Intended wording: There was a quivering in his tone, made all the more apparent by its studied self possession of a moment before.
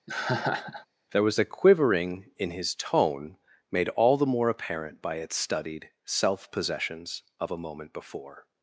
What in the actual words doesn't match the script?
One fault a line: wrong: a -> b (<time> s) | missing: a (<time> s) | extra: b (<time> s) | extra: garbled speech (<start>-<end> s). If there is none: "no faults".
wrong: possession -> possessions (6.5 s)